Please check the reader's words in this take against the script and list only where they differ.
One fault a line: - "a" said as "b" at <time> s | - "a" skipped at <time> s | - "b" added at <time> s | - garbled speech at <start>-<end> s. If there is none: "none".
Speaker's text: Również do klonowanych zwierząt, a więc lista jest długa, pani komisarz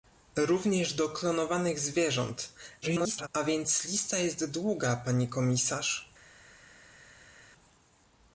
- garbled speech at 2.8-3.3 s